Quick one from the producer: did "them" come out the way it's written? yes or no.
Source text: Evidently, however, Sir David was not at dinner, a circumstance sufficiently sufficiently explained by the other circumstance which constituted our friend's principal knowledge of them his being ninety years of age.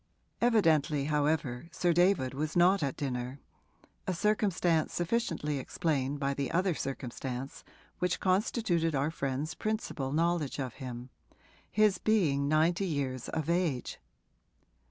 no